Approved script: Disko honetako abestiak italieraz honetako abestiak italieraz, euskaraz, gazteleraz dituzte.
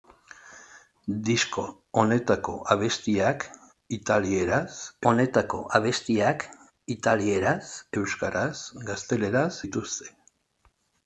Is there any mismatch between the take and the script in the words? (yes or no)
no